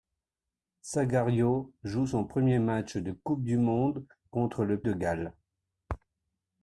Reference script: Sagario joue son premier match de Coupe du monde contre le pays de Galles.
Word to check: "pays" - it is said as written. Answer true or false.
false